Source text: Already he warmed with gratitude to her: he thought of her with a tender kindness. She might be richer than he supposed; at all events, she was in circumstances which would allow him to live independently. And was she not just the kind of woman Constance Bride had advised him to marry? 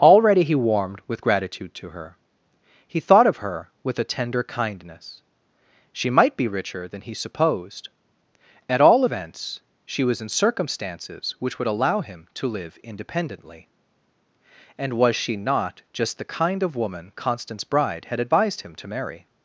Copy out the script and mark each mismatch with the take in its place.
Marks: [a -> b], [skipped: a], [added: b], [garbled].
Already he warmed with gratitude to her: he thought of her with a tender kindness. She might be richer than he supposed; at all events, she was in circumstances which would allow him to live independently. And was she not just the kind of woman Constance Bride had advised him to marry?